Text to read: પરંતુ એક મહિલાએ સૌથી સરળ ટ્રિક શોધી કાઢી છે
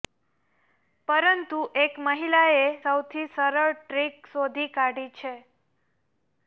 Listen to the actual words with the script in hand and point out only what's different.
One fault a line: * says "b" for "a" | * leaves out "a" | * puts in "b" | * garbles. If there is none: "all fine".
all fine